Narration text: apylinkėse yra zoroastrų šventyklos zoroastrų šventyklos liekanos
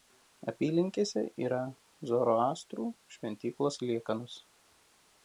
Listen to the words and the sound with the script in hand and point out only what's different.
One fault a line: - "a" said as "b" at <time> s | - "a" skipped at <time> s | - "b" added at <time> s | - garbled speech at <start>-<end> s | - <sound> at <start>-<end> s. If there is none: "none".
- "zoroastrų šventyklos" skipped at 3.8 s